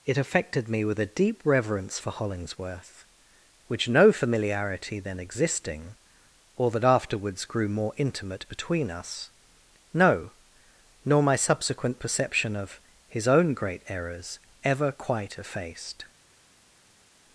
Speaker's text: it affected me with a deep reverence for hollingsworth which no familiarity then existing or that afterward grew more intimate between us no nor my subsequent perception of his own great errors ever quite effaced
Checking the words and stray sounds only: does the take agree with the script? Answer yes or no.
no